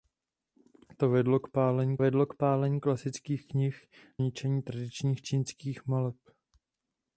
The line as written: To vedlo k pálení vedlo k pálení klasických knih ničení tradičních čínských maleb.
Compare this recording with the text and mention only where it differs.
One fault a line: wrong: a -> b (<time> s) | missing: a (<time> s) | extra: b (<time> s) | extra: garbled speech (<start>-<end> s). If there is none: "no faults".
no faults